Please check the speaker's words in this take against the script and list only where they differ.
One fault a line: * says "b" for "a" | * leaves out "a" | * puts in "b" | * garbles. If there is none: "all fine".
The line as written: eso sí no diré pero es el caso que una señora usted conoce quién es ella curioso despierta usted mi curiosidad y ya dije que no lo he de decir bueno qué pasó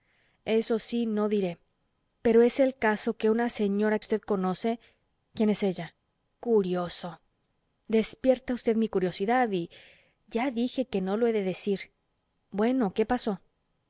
all fine